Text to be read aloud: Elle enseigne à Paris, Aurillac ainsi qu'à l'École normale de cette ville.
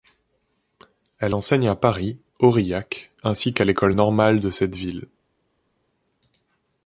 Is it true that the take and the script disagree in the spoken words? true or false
false